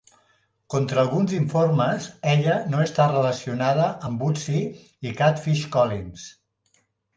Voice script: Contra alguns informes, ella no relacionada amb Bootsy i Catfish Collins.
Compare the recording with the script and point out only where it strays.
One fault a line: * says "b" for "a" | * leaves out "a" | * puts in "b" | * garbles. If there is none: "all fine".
* puts in "està"